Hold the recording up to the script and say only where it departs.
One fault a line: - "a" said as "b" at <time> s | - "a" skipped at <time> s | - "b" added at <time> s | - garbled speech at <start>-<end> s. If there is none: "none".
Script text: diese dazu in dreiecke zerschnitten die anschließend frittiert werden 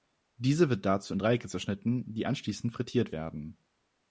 - "wird" added at 0.7 s